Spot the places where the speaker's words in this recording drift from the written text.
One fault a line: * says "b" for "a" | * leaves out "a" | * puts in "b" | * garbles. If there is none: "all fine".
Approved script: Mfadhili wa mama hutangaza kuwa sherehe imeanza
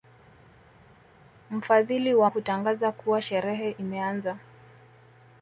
* leaves out "mama"